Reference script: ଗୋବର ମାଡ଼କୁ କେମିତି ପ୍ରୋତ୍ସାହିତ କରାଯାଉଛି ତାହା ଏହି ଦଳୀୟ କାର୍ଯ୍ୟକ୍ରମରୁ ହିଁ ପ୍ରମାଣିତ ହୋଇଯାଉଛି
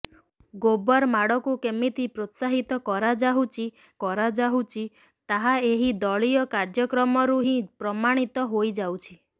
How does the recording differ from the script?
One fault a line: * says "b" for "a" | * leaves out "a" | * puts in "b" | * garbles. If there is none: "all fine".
* puts in "କରାଯାଉଛି"